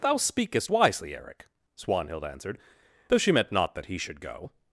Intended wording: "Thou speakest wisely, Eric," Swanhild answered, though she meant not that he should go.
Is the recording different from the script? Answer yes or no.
no